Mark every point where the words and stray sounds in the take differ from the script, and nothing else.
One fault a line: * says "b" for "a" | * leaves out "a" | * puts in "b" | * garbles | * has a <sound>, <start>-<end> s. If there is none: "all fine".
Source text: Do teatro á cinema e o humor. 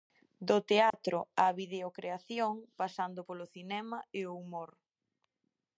* has a dropout, 0.9-0.9 s
* puts in "videocreación pasando polo"